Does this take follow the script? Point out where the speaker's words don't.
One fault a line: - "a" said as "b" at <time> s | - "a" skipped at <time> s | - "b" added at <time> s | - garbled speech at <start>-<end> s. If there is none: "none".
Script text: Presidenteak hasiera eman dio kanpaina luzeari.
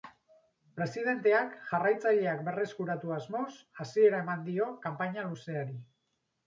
- "jarraitzaileak berreskuratu asmoz" added at 1.7 s